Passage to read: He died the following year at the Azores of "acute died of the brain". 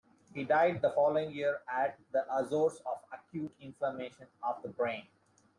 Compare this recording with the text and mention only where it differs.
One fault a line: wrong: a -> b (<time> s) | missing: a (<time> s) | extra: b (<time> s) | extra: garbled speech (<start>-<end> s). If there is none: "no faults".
wrong: died -> inflammation (3.6 s)